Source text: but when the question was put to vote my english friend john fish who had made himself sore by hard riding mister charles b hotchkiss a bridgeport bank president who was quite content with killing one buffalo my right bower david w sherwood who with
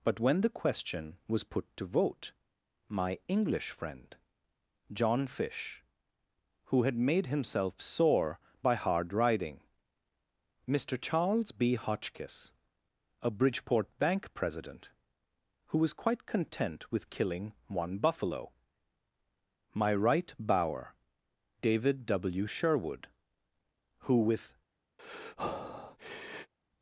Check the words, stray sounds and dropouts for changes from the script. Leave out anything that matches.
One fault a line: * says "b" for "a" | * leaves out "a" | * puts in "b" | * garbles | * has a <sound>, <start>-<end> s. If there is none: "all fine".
* has a breath, 25.0-26.5 s